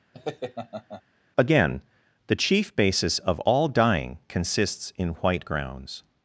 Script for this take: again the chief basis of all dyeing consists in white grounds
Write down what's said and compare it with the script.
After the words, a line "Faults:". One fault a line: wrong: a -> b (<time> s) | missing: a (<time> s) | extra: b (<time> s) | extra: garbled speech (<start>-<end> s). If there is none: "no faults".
again the chief basis of all dyeing consists in white grounds
Faults:
no faults